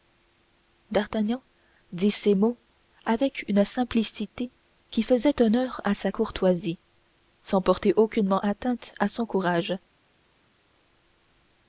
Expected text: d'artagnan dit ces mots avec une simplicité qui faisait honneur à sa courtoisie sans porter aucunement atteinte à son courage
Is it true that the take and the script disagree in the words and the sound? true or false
false